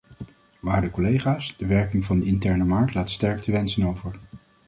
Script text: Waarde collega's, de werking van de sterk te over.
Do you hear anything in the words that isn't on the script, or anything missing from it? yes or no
yes